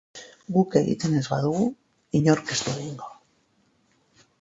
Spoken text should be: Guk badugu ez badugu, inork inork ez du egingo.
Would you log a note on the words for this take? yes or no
yes